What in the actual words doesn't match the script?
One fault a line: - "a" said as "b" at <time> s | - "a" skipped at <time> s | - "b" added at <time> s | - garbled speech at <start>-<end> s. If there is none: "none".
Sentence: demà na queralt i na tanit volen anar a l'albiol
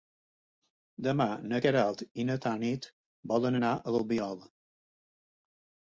none